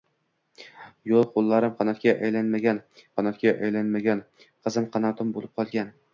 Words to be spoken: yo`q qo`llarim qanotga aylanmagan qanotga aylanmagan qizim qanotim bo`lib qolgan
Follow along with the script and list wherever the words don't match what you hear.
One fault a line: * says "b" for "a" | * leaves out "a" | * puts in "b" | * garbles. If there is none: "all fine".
all fine